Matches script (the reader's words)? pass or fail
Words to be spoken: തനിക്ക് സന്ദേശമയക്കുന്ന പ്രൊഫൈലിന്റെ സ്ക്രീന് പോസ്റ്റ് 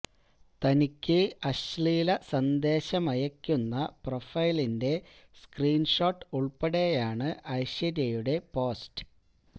fail